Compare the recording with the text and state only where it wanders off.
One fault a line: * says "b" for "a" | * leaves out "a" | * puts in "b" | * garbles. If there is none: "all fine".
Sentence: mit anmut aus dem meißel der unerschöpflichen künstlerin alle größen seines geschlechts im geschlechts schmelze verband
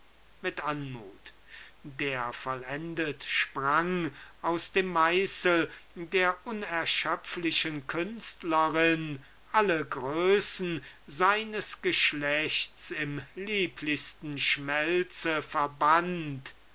* puts in "der vollendet sprang"
* says "lieblichsten" for "geschlechts"